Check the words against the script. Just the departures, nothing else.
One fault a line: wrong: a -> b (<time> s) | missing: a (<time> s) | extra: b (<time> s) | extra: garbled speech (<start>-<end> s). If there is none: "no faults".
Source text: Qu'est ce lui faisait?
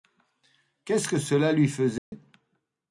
extra: que cela (1.1 s)